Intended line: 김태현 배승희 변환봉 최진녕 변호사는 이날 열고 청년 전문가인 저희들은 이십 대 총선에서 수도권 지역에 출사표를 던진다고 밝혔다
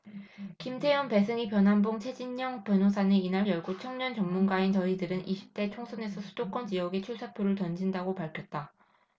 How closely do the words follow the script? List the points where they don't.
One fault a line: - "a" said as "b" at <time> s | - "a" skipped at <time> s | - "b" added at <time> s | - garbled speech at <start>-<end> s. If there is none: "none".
none